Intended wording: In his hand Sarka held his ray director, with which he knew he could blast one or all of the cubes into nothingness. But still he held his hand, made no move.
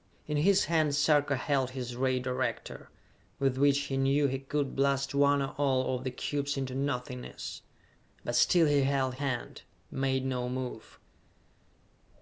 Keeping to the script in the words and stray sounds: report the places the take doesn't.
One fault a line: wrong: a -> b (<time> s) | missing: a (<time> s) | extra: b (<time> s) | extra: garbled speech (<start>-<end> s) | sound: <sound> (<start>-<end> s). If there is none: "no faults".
missing: his (9.1 s)